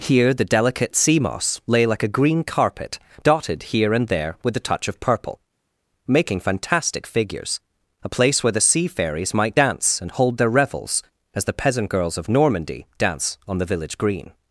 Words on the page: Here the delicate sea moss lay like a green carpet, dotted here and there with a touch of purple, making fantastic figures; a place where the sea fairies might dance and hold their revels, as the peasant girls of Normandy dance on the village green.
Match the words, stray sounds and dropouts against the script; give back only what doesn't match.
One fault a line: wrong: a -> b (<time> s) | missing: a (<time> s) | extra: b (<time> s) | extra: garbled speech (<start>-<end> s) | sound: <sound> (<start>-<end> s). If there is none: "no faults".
no faults